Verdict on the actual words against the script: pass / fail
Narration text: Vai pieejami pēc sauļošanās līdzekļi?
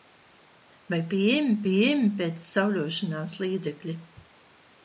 fail